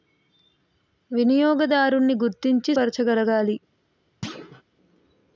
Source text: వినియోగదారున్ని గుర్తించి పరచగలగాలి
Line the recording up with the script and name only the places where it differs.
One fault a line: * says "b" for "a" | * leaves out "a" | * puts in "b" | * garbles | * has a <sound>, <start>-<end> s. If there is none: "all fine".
* has a thud, 4.2-4.6 s